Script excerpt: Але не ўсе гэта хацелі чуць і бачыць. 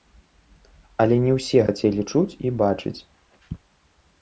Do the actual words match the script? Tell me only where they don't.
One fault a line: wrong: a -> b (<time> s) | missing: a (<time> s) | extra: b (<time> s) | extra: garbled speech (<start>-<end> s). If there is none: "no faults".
missing: гэта (1.6 s)